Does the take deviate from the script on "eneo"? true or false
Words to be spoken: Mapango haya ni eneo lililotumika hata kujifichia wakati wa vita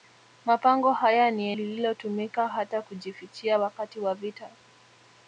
true